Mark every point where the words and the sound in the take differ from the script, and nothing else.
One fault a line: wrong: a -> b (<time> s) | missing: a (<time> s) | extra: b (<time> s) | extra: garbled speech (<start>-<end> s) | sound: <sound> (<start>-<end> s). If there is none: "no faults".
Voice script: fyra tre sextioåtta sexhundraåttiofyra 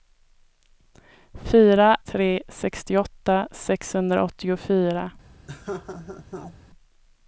sound: laugh (5.5-6.6 s)